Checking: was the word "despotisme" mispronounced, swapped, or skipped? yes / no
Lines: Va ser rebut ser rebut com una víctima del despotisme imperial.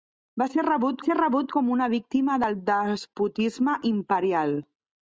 no